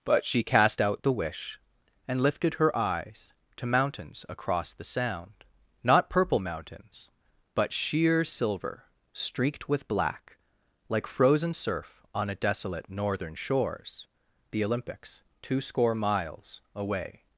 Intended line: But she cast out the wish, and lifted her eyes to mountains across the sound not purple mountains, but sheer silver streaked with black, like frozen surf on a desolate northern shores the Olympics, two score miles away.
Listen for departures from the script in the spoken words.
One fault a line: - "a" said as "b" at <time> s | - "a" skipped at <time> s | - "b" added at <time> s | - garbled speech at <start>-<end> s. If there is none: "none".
none